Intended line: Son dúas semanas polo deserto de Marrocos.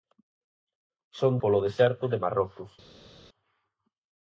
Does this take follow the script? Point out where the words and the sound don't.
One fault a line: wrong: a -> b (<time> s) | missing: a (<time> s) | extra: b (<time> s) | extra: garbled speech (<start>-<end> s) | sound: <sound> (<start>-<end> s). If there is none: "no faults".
missing: dúas semanas (1.3 s)